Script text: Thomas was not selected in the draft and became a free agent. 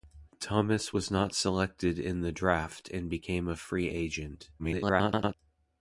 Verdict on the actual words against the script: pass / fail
fail